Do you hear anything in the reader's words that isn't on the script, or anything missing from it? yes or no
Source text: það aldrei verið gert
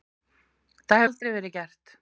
no